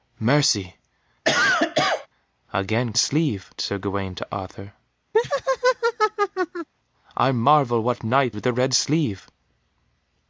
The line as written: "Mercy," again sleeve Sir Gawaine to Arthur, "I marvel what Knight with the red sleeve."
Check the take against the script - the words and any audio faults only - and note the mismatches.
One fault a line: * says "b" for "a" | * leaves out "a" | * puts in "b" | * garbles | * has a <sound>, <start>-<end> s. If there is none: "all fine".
* has a cough, 1.2-2.1 s
* has a laugh, 5.1-6.7 s